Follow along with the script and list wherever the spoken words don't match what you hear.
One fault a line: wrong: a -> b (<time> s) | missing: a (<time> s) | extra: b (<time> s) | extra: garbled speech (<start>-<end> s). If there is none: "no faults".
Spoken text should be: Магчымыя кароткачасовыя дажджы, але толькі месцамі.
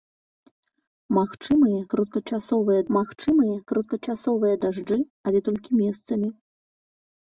extra: магчымыя кароткачасовыя (3.0 s)